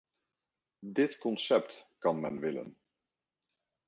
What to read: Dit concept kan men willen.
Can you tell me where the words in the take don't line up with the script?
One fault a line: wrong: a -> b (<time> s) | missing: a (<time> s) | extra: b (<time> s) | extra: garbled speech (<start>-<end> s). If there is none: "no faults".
no faults